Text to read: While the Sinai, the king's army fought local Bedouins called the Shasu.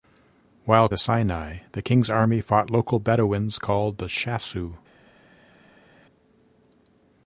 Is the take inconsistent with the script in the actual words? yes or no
no